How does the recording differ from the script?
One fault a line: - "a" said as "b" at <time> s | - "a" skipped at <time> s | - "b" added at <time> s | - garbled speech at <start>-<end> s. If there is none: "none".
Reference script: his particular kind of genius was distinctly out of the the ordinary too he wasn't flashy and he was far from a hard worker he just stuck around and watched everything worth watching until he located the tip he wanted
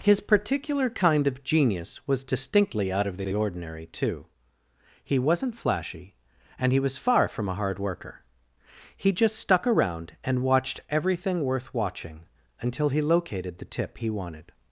none